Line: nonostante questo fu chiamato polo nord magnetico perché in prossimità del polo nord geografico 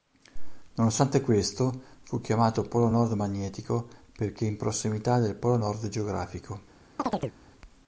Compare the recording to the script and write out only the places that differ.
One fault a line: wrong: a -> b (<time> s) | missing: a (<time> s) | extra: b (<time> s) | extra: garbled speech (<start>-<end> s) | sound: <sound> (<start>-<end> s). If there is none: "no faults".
sound: chirp (7.0-7.4 s)